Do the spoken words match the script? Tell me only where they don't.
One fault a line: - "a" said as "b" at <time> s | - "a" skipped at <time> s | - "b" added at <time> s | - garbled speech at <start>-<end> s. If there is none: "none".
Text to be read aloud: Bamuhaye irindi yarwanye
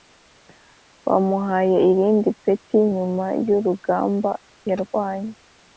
- "peti nyuma y'urugamba" added at 2.4 s